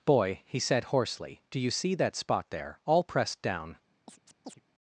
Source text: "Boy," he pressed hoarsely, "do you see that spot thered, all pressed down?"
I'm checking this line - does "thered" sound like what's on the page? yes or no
no